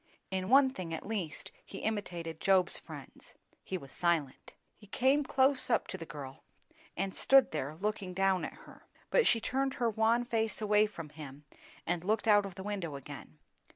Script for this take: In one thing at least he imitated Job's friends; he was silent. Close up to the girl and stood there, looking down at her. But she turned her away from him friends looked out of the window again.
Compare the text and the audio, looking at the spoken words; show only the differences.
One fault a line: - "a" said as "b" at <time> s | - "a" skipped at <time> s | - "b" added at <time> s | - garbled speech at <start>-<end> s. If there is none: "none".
- "He came" added at 4.7 s
- "wan face" added at 9.9 s
- "friends" said as "and" at 11.9 s